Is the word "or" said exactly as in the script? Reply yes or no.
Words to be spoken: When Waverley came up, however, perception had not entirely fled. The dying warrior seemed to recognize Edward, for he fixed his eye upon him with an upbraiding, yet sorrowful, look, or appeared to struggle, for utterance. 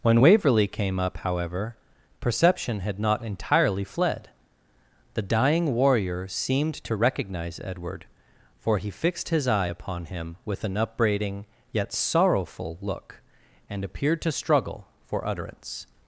no